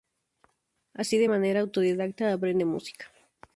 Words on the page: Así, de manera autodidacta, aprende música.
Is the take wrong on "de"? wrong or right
right